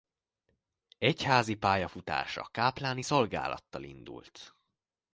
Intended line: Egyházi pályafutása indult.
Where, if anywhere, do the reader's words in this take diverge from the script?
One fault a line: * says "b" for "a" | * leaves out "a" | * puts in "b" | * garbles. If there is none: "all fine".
* puts in "kápláni szolgálattal"